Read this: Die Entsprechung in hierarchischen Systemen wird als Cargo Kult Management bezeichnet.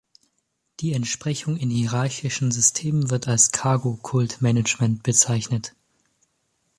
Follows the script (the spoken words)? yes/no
yes